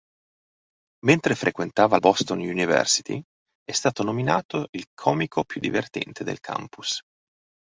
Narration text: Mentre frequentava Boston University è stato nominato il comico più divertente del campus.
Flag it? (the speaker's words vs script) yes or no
no